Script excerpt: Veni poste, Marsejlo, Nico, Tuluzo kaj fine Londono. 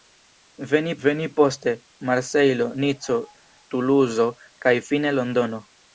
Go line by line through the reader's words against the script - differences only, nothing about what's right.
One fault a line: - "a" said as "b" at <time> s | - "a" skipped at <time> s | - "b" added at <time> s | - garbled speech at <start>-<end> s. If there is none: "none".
- "veni" added at 1.0 s